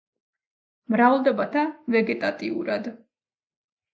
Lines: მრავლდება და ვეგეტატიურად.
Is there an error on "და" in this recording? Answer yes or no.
no